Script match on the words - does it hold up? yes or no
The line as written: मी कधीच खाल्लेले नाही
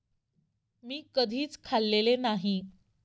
yes